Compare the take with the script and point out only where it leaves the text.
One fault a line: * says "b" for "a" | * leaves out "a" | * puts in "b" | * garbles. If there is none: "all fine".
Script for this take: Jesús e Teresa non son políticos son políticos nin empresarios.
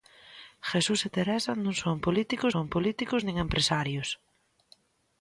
all fine